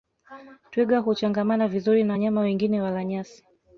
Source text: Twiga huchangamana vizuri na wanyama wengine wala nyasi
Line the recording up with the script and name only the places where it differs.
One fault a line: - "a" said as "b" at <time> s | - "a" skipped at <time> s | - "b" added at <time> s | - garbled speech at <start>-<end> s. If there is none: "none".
none